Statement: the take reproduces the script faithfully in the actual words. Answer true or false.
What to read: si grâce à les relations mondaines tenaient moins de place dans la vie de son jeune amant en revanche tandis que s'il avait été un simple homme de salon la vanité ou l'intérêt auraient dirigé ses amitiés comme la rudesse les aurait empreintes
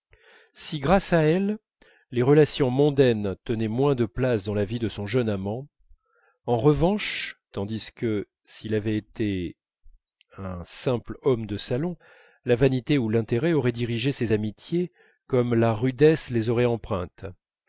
false